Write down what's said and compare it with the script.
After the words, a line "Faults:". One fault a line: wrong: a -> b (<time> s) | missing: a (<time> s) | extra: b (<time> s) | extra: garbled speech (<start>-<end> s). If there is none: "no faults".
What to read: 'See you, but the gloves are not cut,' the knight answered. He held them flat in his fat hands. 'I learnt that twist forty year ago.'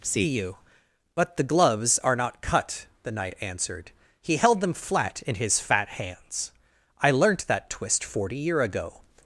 'See you, but the gloves are not cut,' the knight answered. He held them flat in his fat hands. 'I learnt that twist forty year ago.'
Faults:
no faults